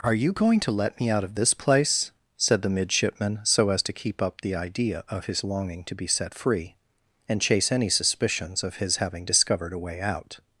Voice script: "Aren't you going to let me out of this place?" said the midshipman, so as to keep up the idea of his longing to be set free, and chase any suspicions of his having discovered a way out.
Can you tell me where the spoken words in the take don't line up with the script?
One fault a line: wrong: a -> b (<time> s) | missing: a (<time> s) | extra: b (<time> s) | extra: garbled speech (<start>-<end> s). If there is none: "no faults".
wrong: Aren't -> Are (0.0 s)